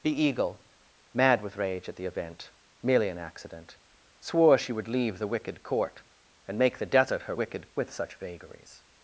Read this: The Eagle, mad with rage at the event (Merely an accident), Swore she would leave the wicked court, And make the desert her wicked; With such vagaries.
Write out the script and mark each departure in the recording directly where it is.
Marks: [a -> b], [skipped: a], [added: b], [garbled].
The Eagle, mad with rage at the event (Merely an accident), Swore she would leave the wicked court, And make the desert her wicked; With such vagaries.